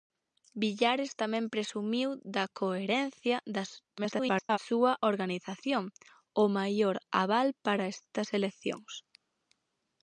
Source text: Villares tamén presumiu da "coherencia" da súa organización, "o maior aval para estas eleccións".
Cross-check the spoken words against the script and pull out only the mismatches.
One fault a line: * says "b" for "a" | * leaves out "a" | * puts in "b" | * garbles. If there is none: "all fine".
* garbles